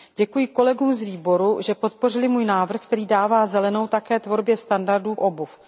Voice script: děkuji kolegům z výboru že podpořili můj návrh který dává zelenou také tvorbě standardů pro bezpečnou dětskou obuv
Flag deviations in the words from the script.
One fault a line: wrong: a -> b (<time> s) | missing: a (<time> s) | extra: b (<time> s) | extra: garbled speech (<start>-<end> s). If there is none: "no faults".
missing: pro bezpečnou dětskou (5.2 s)